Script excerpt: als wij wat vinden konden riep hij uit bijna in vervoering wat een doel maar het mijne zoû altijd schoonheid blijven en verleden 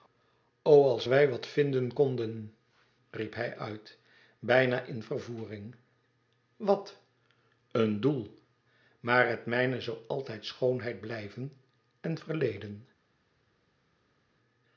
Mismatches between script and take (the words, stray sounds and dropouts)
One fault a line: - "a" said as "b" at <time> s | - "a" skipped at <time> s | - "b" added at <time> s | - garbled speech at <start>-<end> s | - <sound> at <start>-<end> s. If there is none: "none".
none